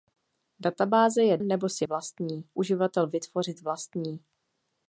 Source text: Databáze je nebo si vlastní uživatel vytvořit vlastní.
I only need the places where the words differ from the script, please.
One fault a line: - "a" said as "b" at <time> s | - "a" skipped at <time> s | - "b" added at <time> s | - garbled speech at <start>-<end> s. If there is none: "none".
none